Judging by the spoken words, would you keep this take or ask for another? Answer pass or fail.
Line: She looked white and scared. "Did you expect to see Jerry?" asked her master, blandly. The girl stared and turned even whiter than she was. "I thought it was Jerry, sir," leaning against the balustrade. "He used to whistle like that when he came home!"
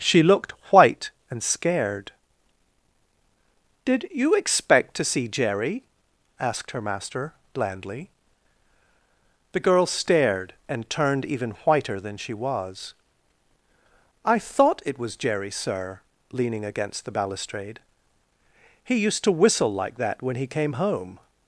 pass